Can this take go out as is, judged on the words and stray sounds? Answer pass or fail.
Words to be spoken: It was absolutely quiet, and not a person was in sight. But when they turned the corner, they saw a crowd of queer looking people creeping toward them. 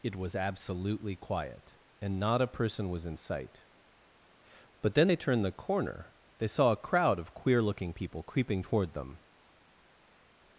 fail